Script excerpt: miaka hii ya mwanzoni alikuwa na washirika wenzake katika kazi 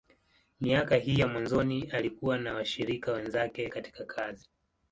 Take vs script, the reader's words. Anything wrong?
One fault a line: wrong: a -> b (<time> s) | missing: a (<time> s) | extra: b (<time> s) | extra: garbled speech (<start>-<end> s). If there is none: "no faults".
no faults